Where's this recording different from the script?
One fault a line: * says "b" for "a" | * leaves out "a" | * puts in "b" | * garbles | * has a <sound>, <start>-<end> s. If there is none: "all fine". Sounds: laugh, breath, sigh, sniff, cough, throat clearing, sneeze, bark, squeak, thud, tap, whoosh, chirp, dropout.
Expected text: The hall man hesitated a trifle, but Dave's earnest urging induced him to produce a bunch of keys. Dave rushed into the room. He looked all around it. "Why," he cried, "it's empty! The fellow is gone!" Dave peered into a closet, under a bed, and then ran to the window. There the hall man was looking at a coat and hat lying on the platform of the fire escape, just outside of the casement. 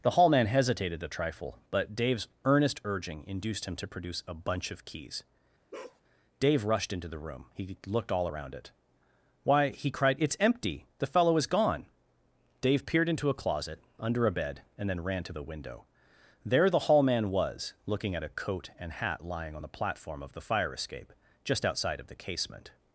* has a bark, 5.7-6.0 s